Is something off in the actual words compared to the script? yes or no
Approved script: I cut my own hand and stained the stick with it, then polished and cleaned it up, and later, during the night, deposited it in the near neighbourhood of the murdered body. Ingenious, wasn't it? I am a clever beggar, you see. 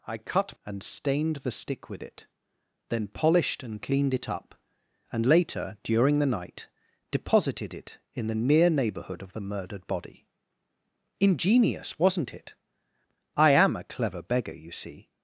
yes